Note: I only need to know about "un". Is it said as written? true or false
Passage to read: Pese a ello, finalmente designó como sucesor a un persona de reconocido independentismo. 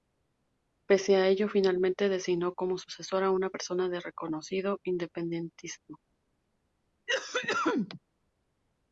false